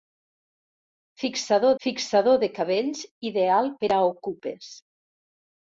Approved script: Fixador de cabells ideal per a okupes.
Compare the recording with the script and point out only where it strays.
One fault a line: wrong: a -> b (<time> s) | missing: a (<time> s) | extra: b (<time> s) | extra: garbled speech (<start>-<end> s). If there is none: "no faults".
extra: fixador (1.9 s)